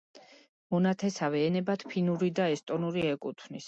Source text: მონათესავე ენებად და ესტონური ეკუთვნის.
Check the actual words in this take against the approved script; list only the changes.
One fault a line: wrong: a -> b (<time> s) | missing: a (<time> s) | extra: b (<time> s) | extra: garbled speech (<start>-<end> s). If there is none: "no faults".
extra: ფინური (1.9 s)